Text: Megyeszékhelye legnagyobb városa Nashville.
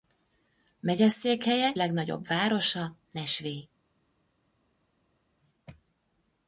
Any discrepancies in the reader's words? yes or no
no